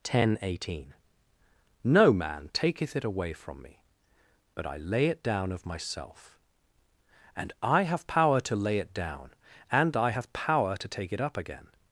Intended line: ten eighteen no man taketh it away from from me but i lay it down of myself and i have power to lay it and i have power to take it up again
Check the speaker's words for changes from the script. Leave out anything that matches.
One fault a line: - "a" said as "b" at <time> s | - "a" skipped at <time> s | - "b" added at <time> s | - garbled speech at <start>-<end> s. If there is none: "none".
- "from" skipped at 3.6 s
- "down" added at 8.9 s